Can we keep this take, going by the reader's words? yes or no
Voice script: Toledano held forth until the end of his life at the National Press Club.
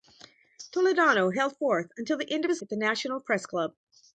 no